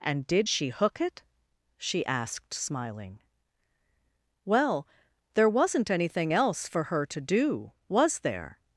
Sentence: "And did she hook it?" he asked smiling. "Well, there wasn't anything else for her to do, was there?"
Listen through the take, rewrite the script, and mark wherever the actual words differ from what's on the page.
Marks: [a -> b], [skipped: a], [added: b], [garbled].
"And did she hook it?" [he -> she] asked smiling. "Well, there wasn't anything else for her to do, was there?"